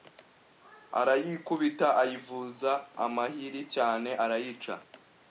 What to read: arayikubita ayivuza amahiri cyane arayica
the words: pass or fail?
pass